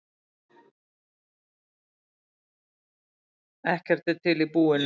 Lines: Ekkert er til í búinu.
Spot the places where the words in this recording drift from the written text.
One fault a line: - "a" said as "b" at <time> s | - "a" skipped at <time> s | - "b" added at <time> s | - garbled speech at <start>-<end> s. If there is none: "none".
none